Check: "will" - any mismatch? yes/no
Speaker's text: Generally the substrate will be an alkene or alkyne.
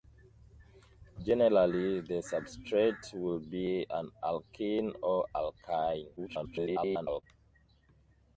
no